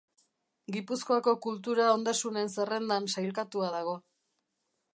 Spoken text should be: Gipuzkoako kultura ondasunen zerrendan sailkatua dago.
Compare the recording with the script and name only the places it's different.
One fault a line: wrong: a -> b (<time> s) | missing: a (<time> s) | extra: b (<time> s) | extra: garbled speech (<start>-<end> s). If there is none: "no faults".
no faults